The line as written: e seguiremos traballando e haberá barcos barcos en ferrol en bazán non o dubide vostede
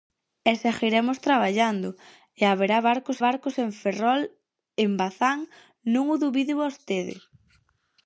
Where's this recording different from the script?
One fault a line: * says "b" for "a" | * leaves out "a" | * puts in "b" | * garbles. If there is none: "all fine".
all fine